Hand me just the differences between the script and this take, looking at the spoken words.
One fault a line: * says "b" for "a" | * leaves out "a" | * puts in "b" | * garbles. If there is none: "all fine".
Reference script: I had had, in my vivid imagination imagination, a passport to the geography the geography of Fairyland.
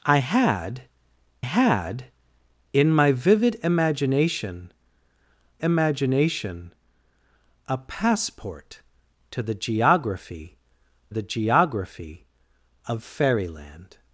all fine